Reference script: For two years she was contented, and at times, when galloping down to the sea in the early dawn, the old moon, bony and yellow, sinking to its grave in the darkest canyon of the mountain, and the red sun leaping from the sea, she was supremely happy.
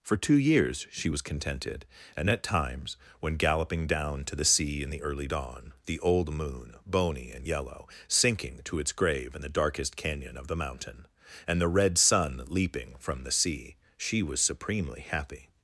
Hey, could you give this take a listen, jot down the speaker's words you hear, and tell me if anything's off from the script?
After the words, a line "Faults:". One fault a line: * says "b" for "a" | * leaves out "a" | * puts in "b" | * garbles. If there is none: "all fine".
For two years she was contented, and at times, when galloping down to the sea in the early dawn, the old moon, bony and yellow, sinking to its grave in the darkest canyon of the mountain, and the red sun leaping from the sea, she was supremely happy.
Faults:
all fine